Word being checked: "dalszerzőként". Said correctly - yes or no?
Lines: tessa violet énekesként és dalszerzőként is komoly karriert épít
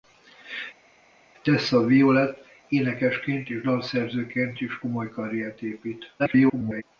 yes